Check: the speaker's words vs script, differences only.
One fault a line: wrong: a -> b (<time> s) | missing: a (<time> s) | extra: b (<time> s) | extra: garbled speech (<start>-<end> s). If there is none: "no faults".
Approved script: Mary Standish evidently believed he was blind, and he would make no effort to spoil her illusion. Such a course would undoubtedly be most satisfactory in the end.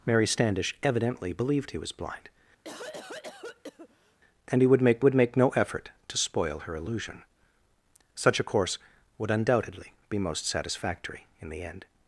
extra: would make (5.0 s)